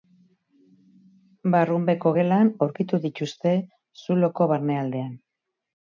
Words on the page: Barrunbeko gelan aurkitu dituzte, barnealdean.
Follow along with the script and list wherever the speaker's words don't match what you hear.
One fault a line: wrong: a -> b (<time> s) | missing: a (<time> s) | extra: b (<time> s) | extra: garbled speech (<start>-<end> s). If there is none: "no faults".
extra: zuloko (4.0 s)